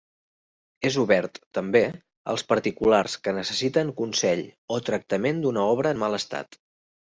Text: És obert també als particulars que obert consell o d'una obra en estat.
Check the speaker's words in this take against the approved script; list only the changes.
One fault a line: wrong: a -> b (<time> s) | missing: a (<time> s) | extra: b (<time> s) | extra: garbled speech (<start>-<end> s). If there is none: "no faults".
wrong: obert -> necessiten (3.4 s)
extra: tractament (4.9 s)
extra: mal (6.1 s)